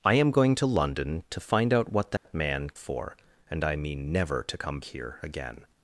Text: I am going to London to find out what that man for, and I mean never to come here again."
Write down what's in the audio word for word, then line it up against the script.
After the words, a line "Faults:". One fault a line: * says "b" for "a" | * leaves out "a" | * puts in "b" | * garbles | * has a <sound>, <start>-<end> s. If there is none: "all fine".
I am going to London to find out what that man for, and I mean never to come here again."
Faults:
* has a dropout, 2.2-2.2 s